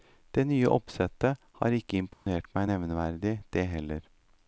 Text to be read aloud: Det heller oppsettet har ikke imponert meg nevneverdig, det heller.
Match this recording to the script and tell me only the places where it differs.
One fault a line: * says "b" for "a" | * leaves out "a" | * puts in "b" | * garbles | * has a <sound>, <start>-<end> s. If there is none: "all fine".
* says "nye" for "heller"
* has a dropout, 2.1-2.3 s